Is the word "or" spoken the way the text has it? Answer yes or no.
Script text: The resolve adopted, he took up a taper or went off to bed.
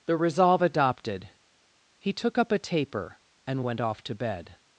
no